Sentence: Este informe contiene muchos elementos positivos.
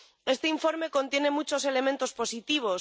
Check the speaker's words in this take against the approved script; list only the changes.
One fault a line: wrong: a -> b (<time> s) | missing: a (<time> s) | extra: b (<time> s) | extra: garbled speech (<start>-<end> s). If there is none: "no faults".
no faults